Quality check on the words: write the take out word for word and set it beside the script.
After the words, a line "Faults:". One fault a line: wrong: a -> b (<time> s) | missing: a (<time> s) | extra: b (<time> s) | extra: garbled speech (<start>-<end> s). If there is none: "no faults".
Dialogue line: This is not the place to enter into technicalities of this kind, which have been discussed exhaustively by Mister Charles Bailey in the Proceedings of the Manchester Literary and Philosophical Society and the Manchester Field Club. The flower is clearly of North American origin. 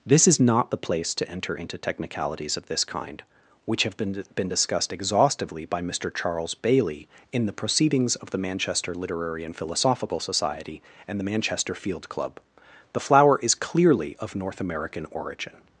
This is not the place to enter into technicalities of this kind, which have been been discussed exhaustively by Mister Charles Bailey in the Proceedings of the Manchester Literary and Philosophical Society and the Manchester Field Club. The flower is clearly of North American origin.
Faults:
extra: been (4.3 s)